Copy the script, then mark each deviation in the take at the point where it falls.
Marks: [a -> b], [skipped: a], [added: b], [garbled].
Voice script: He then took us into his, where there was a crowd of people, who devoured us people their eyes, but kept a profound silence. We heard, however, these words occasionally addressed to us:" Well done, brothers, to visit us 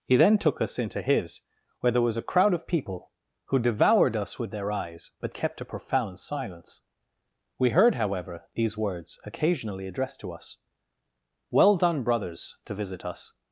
He then took us into his, where there was a crowd of people, who devoured us [people -> with] their eyes, but kept a profound silence. We heard, however, these words occasionally addressed to us:" Well done, brothers, to visit us